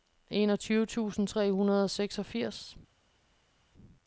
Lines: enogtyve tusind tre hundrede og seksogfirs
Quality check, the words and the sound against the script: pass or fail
pass